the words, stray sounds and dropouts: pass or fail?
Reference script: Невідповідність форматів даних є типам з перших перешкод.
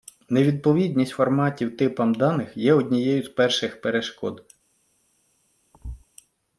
fail